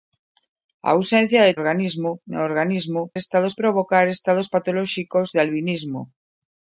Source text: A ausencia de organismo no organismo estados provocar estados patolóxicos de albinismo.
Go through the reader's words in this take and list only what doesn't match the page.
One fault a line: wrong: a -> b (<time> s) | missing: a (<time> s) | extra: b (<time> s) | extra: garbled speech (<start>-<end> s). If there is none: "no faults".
no faults